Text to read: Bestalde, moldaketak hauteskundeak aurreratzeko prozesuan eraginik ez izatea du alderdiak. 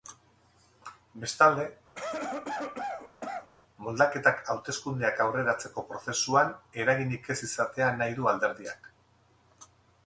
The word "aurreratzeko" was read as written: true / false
true